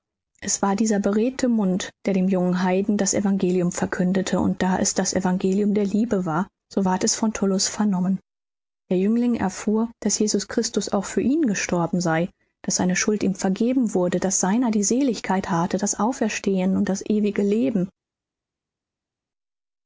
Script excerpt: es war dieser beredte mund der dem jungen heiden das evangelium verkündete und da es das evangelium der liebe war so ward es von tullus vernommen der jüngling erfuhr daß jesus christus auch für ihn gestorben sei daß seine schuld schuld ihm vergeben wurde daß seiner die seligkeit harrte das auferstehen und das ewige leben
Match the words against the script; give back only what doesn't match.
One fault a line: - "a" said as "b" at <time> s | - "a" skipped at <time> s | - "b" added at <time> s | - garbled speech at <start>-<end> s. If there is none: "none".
- "schuld" skipped at 13.2 s